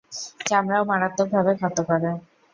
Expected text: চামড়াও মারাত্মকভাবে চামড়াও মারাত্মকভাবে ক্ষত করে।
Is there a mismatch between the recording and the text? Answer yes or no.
yes